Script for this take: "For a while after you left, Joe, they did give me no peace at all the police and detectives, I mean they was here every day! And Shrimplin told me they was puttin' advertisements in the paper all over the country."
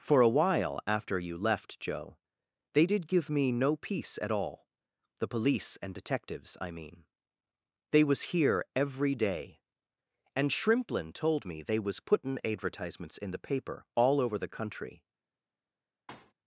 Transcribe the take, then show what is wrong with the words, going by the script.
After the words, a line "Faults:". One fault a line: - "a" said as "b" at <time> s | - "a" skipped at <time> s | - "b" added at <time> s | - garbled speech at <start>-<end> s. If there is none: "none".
"For a while after you left, Joe, they did give me no peace at all the police and detectives, I mean they was here every day! And Shrimplin told me they was puttin' advertisements in the paper all over the country."
Faults:
none